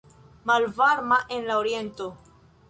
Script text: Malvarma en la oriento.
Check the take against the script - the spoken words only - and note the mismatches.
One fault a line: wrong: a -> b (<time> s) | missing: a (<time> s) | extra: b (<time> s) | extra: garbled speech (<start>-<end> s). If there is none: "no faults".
no faults